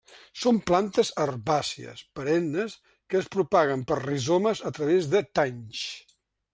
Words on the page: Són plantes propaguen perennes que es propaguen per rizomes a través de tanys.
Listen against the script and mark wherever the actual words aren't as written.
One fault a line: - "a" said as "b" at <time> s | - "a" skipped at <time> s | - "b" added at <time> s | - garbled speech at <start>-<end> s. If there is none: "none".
- "propaguen" said as "herbàcies" at 1.2 s